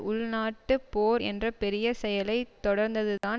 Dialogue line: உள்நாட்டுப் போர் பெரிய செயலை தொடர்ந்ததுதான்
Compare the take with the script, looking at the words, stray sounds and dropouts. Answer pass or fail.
fail